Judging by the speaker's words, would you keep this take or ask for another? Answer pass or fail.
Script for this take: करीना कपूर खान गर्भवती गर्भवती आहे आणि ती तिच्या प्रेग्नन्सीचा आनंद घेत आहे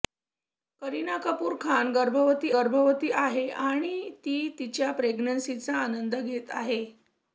pass